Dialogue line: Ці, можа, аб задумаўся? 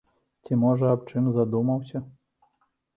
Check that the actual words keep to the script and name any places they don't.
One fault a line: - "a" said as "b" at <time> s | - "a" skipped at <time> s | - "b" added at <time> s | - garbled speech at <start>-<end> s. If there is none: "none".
- "чым" added at 1.1 s